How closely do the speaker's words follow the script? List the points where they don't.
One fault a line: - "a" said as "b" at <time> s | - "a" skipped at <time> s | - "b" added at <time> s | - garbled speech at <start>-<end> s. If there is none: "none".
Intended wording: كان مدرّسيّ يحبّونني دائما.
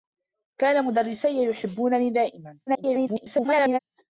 - garbled speech at 2.7-3.8 s